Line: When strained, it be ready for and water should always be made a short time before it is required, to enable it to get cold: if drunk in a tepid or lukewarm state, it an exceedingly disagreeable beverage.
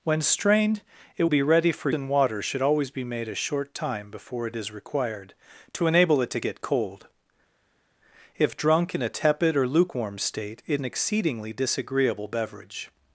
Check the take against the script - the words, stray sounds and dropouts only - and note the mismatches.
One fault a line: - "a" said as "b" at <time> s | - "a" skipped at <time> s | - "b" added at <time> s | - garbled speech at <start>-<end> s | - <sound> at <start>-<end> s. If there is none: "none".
none